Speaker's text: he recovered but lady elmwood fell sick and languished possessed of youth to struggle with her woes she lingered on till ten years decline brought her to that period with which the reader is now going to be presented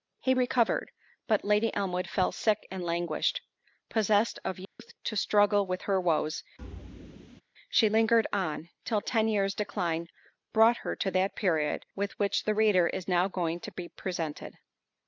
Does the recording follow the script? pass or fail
pass